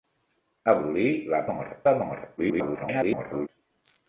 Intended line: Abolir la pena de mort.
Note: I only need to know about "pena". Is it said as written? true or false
false